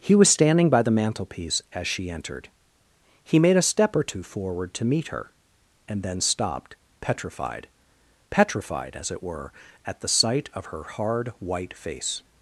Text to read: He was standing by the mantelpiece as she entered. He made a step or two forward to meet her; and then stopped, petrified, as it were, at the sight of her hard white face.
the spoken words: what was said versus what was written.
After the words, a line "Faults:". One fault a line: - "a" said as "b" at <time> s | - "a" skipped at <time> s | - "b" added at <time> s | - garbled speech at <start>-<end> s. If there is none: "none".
He was standing by the mantelpiece as she entered. He made a step or two forward to meet her; and then stopped, petrified petrified, as it were, at the sight of her hard white face.
Faults:
- "petrified" added at 8.3 s